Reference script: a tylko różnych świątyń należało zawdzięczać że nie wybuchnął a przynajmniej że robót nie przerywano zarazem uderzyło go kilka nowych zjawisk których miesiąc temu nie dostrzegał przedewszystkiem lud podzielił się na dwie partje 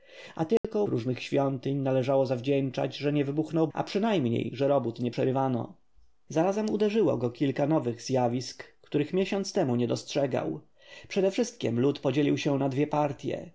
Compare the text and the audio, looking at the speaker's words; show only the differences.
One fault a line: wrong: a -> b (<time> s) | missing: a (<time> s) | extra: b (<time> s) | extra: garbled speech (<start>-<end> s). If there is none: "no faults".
no faults